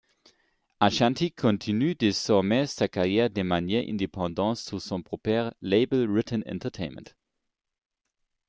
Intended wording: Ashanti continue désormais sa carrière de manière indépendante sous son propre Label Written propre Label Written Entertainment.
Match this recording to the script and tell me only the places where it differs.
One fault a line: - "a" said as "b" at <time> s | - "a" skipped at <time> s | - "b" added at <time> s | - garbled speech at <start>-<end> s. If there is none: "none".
- "propre Label Written" skipped at 6.4 s